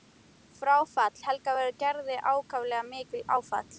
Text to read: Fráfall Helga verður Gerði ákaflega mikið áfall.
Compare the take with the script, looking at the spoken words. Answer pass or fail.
pass